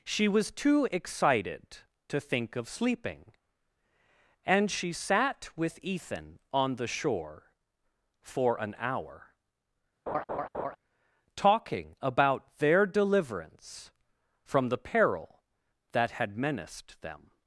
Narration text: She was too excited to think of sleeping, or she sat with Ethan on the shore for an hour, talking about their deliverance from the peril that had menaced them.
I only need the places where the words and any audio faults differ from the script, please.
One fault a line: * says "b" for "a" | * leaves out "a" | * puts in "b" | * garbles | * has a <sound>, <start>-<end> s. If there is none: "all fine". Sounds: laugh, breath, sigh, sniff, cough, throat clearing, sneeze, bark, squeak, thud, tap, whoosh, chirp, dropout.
* says "and" for "or"
* has a laugh, 10.1-10.8 s